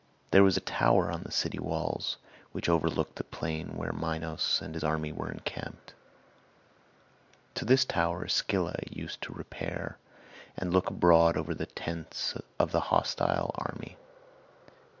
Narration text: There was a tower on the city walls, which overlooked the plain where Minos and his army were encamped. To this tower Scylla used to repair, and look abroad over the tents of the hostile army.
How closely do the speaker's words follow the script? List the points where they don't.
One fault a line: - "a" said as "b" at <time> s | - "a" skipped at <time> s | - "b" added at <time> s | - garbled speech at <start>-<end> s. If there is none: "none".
none